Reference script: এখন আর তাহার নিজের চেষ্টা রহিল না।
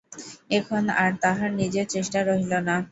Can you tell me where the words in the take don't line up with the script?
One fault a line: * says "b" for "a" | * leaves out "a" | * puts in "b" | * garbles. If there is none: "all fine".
all fine